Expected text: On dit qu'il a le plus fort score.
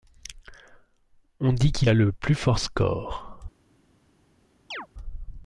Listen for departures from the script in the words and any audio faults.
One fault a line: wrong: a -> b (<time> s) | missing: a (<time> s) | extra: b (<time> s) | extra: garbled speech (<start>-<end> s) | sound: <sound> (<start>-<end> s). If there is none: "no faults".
sound: chirp (4.7-4.9 s)